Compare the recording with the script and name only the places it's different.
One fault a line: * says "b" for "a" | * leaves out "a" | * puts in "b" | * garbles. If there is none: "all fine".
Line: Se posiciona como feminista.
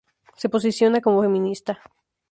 all fine